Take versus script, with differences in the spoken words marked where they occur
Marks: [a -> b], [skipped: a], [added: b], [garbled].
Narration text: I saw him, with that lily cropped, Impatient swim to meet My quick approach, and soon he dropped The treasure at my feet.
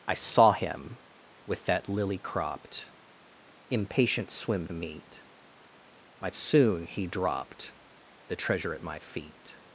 I saw him, with that lily cropped, Impatient swim [skipped: to] meet My [skipped: quick approach, and] soon he dropped The treasure at my feet.